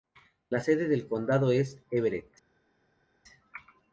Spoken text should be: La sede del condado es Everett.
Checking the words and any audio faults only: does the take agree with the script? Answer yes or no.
yes